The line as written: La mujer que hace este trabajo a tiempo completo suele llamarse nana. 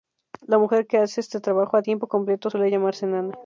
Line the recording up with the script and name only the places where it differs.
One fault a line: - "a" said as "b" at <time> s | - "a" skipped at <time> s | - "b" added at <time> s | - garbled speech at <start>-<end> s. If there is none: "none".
none